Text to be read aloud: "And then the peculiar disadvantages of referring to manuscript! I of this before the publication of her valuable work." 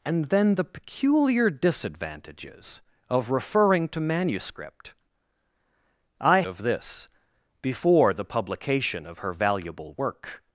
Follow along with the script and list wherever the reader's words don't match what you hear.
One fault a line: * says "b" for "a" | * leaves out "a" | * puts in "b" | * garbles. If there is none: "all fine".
all fine